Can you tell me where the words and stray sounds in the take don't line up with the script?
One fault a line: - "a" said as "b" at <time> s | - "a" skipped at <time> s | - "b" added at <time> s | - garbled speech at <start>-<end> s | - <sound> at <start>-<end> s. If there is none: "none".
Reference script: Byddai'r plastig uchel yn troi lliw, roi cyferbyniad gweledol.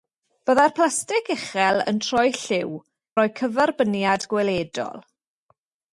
none